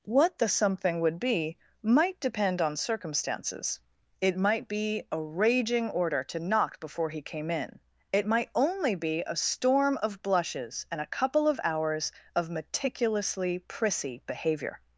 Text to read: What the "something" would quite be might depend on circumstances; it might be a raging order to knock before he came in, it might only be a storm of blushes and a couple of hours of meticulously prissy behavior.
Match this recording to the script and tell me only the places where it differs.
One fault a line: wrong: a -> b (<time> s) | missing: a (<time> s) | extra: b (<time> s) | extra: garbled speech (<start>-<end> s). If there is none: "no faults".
missing: quite (1.2 s)